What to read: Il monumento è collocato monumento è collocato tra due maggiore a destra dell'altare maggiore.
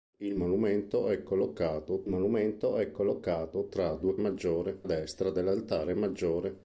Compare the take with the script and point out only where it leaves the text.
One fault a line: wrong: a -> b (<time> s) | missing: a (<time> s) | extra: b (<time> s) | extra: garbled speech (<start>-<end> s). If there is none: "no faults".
no faults